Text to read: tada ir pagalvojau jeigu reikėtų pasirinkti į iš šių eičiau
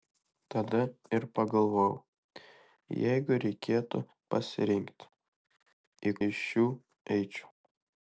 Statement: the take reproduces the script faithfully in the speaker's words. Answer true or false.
true